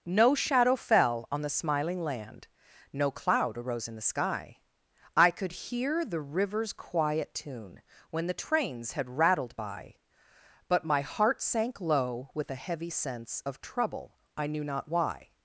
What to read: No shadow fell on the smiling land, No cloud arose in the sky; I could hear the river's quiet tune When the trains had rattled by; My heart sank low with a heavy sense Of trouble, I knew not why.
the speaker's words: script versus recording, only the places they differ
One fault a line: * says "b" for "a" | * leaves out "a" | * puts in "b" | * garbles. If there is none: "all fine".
* puts in "But"